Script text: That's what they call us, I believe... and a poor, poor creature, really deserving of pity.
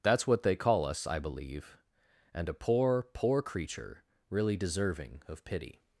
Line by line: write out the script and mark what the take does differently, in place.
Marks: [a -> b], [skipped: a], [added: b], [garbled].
That's what they call us, I believe... and a poor, poor creature, really deserving of pity.